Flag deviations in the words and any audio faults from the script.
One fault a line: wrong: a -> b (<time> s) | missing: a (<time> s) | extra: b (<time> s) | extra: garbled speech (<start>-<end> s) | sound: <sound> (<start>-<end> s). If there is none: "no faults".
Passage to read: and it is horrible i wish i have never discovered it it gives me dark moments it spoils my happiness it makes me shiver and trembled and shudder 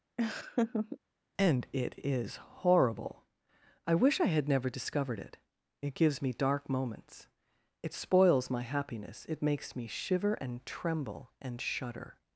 sound: laugh (0.2-1.0 s)
wrong: have -> had (4.3 s)
wrong: trembled -> tremble (10.6 s)